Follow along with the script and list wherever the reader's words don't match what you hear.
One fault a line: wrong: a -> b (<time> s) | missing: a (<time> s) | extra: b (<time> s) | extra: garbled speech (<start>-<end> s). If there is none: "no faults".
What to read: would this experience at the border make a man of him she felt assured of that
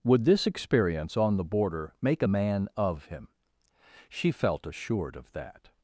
wrong: at -> on (1.2 s)